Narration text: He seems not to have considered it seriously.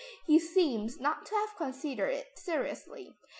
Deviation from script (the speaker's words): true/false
false